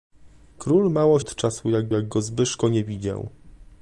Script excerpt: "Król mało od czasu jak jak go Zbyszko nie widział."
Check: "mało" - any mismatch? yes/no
no